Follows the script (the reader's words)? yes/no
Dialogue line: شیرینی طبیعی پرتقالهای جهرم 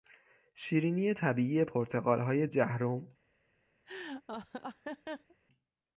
yes